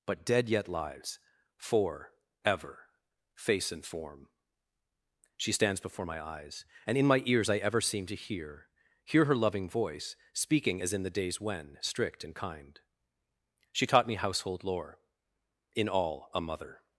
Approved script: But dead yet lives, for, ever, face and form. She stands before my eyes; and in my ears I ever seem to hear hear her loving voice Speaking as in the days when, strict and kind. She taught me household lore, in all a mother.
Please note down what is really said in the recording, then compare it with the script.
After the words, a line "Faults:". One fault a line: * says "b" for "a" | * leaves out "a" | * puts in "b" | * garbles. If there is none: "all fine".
But dead yet lives, for, ever, face and form. She stands before my eyes; and in my ears I ever seem to hear hear her loving voice Speaking as in the days when, strict and kind. She taught me household lore, in all a mother.
Faults:
all fine